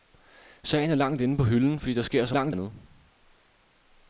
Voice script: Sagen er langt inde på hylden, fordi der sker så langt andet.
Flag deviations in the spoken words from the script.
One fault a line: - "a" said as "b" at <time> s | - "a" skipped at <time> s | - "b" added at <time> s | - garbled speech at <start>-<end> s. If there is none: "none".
none